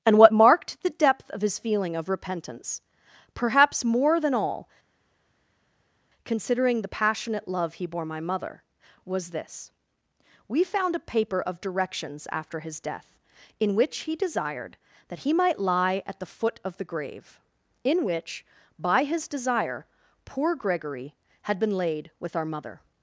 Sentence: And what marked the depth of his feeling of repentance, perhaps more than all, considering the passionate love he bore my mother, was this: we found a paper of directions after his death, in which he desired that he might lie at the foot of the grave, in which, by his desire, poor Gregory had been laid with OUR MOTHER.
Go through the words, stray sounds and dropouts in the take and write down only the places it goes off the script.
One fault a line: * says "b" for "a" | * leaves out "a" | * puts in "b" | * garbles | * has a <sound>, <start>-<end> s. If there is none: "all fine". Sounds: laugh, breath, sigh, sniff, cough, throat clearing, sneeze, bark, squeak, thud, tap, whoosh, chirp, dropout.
all fine